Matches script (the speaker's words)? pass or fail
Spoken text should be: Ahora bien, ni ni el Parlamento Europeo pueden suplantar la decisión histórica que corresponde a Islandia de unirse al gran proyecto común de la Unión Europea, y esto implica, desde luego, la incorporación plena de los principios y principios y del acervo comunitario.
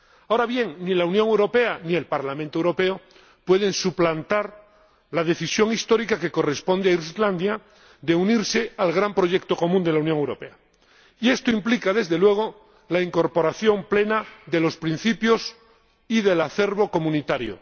fail